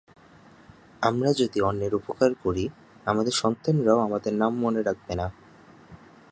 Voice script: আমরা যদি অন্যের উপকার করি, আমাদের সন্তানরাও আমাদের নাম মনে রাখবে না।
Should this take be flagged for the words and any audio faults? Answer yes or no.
no